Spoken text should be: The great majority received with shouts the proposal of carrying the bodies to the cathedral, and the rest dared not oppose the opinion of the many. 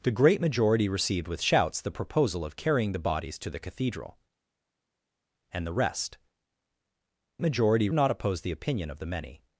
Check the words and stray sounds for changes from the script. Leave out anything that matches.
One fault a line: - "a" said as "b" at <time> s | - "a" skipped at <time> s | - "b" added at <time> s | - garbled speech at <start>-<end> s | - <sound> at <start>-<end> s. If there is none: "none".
- "dared" said as "majority" at 7.4 s